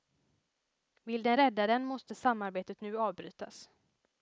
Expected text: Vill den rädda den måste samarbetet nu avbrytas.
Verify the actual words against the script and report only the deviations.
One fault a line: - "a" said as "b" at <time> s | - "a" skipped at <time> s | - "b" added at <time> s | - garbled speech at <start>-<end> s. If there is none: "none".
none